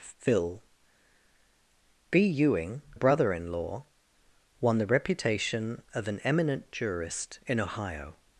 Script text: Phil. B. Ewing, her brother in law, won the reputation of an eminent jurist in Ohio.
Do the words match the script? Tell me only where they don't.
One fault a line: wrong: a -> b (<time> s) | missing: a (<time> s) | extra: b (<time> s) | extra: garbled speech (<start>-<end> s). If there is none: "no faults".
missing: her (2.8 s)